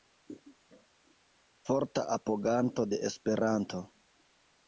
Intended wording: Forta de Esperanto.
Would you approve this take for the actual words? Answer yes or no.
no